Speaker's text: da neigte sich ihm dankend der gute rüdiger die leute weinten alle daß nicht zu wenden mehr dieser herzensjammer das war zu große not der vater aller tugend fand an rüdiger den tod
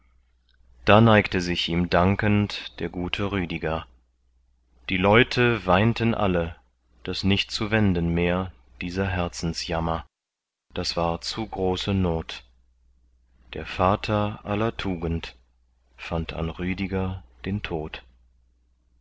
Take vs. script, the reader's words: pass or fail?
pass